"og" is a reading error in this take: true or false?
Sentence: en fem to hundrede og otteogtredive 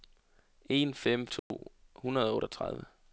false